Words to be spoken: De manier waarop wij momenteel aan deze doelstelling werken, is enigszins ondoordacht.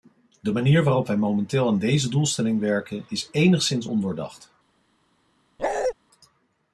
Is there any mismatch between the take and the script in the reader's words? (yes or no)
no